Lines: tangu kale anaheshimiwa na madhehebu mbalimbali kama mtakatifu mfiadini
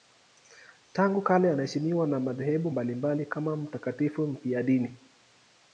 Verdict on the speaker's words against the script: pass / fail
pass